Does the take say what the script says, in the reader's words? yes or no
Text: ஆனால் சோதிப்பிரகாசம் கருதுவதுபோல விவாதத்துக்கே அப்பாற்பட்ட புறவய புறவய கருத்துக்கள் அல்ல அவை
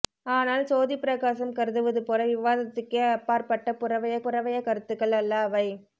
yes